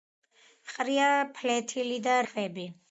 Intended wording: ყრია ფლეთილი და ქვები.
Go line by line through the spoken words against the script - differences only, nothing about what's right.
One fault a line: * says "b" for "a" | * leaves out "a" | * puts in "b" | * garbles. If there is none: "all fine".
all fine